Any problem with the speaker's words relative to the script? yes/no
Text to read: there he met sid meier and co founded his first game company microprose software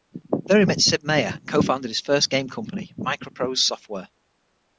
no